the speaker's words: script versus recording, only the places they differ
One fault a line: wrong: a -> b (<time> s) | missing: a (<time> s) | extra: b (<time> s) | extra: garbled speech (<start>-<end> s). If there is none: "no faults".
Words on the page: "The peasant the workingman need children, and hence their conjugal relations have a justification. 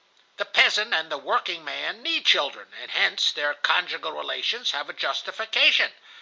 extra: and (0.9 s)